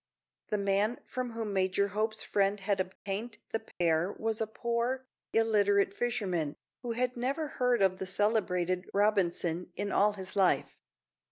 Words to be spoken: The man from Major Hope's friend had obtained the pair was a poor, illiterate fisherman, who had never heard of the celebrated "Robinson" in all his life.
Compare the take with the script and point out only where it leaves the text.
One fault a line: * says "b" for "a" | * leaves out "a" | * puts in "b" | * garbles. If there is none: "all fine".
* puts in "whom"